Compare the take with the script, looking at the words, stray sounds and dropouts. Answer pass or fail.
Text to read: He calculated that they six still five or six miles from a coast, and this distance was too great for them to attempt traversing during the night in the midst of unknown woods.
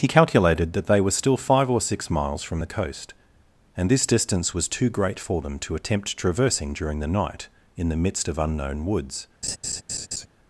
fail